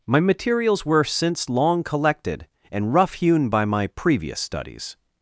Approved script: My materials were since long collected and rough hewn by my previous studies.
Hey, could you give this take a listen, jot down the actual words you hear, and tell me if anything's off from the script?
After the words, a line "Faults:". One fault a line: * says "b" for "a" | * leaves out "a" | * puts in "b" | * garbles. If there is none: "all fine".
My materials were since long collected and rough hewn by my previous studies.
Faults:
all fine